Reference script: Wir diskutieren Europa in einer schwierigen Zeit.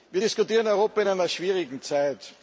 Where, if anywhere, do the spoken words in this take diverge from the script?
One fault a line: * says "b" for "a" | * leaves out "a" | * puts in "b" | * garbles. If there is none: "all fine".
all fine